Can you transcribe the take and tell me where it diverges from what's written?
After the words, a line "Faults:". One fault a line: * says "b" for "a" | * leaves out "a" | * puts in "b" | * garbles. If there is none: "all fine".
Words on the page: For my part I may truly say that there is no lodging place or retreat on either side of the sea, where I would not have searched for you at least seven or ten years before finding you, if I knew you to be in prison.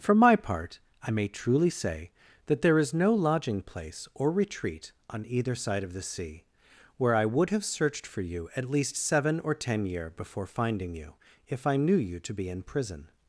For my part I may truly say that there is no lodging place or retreat on either side of the sea, where I would have searched for you at least seven or ten year before finding you, if I knew you to be in prison.
Faults:
* leaves out "not"
* says "year" for "years"